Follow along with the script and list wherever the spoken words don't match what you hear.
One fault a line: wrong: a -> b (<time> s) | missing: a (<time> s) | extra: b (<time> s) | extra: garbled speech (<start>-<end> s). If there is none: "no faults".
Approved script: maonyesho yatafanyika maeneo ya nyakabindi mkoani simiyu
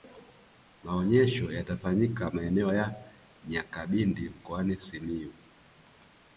no faults